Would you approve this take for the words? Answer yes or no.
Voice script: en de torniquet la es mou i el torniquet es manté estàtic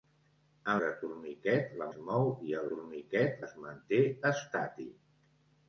yes